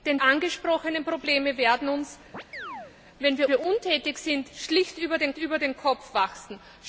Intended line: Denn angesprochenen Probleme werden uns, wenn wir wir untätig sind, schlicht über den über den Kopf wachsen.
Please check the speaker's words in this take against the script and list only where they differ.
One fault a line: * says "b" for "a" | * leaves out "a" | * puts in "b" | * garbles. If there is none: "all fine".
all fine